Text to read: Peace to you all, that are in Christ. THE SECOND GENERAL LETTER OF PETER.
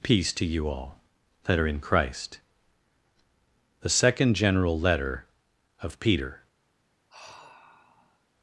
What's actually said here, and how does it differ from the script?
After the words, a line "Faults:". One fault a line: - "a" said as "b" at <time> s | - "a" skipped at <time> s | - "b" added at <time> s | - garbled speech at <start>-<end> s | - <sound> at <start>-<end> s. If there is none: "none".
Peace to you all, that are in Christ. THE SECOND GENERAL LETTER OF PETER.
Faults:
- sigh at 7.1-8.3 s